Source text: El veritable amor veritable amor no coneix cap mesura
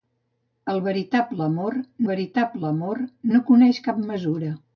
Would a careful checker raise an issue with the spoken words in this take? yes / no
no